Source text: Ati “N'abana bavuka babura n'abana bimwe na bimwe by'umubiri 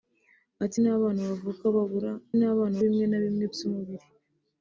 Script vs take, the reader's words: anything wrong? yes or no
no